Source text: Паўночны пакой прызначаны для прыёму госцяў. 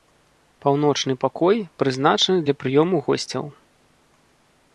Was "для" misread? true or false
false